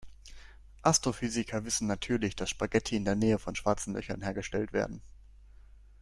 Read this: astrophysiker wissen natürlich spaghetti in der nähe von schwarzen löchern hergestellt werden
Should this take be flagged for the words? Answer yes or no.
yes